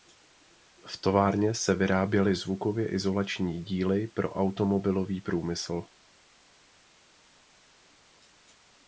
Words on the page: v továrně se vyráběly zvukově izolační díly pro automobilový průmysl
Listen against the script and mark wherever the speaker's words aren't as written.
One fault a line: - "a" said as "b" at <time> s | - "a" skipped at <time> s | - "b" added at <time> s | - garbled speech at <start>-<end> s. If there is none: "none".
none